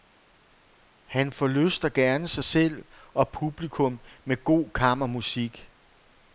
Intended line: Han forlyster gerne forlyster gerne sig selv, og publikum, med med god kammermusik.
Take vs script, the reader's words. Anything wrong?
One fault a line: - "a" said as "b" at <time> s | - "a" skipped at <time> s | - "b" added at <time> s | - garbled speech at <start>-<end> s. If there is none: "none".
- "forlyster gerne" skipped at 2.3 s
- "med" skipped at 4.4 s